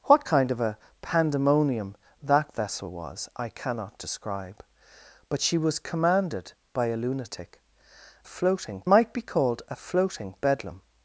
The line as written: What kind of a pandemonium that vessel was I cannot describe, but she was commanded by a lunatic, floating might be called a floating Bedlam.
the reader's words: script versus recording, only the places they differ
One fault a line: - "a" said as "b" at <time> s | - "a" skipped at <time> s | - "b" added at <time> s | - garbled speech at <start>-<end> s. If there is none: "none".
none